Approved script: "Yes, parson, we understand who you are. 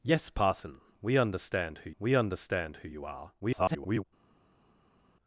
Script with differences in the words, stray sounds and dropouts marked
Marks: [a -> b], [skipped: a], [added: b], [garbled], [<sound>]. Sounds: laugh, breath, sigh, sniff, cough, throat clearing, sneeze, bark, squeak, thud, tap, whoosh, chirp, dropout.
"Yes, parson, we understand who [added: we understand who] you are. [garbled]